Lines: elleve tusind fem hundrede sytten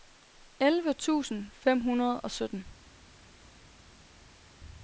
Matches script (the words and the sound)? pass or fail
fail